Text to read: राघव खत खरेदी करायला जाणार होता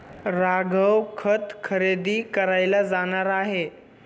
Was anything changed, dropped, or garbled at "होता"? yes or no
yes